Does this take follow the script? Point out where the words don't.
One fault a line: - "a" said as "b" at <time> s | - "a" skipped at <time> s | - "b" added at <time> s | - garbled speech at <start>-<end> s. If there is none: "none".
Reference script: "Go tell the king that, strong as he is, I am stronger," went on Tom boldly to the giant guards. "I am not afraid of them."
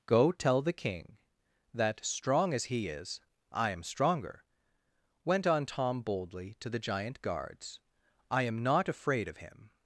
- "them" said as "him" at 9.4 s